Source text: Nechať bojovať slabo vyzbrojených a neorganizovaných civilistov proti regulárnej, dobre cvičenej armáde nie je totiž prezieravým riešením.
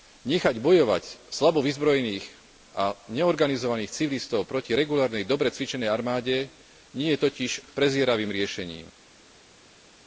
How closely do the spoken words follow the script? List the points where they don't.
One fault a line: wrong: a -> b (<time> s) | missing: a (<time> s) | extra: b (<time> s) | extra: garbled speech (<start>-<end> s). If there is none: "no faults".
no faults